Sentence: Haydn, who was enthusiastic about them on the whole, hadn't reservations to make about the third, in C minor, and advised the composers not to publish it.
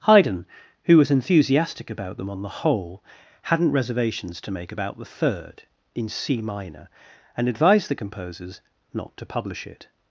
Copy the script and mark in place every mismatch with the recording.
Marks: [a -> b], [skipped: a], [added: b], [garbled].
Haydn, who was enthusiastic about them on the whole, hadn't reservations to make about the third, in C minor, and advised the composers not to publish it.